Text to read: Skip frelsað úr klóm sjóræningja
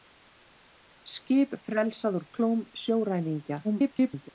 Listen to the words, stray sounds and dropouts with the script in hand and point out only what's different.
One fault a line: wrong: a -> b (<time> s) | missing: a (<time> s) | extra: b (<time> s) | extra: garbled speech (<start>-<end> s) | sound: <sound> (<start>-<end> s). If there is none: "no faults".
extra: garbled speech (3.6-4.3 s)